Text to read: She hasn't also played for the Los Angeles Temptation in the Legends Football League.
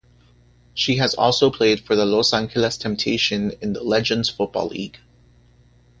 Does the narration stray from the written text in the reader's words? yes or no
yes